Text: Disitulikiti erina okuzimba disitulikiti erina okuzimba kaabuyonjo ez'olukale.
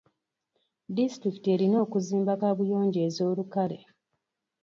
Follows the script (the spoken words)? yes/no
no